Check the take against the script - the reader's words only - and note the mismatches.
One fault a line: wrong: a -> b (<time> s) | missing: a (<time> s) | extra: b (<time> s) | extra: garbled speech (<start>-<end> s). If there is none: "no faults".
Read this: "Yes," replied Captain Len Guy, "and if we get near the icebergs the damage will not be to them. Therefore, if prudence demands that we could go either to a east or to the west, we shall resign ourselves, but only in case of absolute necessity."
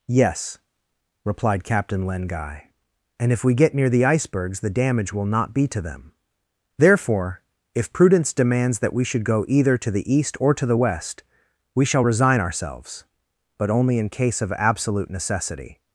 wrong: could -> should (9.0 s)
wrong: a -> the (9.9 s)